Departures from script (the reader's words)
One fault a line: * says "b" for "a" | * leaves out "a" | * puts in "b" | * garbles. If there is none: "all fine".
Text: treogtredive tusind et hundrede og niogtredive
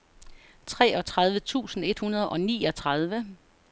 all fine